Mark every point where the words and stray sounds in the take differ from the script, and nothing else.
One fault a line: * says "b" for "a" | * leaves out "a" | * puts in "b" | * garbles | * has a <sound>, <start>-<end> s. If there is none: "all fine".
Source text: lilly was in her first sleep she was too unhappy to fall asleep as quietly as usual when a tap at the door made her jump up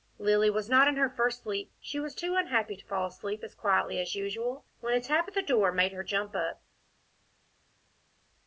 * puts in "not"